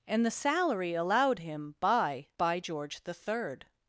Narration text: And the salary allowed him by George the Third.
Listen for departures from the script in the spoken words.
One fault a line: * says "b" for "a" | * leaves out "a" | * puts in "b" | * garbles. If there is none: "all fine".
* puts in "by"